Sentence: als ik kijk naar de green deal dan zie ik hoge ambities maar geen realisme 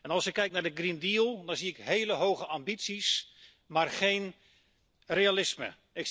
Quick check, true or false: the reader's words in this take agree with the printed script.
false